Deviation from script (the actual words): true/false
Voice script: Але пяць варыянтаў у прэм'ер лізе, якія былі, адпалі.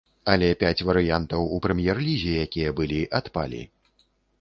false